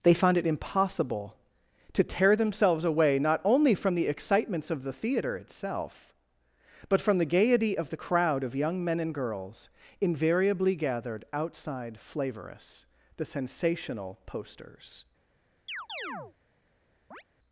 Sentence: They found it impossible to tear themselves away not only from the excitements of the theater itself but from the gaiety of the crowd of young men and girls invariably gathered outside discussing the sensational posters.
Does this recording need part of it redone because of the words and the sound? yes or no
yes